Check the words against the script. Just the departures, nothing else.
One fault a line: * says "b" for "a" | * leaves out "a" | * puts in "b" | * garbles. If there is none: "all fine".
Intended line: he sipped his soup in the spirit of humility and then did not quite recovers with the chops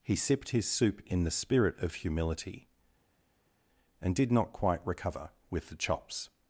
* leaves out "then"
* says "recover" for "recovers"